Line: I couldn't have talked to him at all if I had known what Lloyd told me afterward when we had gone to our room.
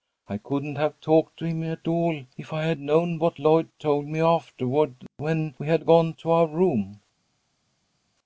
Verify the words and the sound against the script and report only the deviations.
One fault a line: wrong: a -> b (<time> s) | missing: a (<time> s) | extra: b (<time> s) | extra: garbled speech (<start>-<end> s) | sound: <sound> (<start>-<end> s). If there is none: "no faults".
no faults